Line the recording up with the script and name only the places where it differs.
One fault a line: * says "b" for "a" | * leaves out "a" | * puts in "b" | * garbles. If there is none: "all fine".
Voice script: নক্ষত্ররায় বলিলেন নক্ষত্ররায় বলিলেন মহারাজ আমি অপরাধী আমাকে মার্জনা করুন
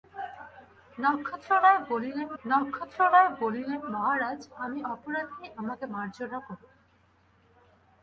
all fine